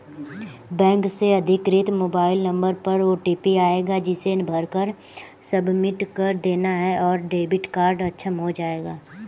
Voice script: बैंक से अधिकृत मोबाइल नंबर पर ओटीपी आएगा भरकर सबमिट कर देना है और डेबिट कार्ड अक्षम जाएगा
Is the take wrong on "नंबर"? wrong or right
right